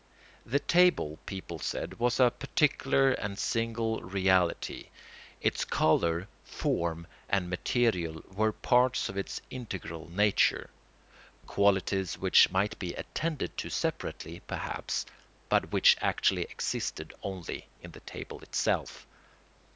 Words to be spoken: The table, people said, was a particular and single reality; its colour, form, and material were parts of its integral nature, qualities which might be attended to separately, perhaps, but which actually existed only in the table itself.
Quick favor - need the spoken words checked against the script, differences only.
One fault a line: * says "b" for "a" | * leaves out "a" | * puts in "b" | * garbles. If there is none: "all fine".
all fine